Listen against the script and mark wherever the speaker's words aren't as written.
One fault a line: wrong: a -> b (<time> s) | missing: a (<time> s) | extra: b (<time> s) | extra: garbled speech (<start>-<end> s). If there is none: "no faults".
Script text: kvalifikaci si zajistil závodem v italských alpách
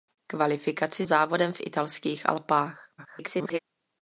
missing: si zajistil (1.1 s)
extra: garbled speech (3.0-3.6 s)